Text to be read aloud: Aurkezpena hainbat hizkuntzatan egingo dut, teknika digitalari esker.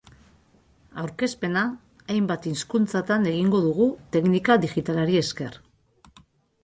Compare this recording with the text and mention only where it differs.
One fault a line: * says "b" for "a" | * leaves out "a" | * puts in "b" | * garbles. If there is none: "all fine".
* says "dugu" for "dut"